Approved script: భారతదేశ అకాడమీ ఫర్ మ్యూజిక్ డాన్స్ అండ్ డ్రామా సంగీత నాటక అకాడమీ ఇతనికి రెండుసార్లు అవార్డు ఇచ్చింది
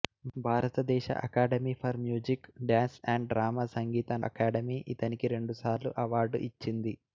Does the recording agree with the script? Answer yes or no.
no